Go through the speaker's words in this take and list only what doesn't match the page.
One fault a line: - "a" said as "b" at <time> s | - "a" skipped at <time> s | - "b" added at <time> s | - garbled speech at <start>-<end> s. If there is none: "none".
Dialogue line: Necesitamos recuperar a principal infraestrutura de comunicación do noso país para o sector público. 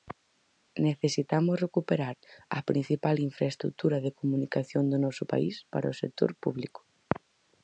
none